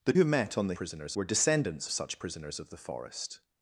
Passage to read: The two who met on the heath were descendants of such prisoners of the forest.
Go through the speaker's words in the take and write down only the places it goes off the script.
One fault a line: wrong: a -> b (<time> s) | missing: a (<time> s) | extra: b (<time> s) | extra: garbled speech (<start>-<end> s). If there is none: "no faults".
missing: two (0.1 s)
wrong: heath -> prisoners (0.7 s)
missing: of (1.9 s)